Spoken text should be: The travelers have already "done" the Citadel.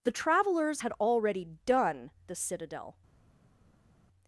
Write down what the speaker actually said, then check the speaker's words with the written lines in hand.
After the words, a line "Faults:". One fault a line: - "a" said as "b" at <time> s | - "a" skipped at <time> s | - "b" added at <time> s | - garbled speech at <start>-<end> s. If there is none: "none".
The travelers had already "done" the Citadel.
Faults:
- "have" said as "had" at 0.8 s